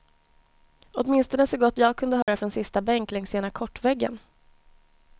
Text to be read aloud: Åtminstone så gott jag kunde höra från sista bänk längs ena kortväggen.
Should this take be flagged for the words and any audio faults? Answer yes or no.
yes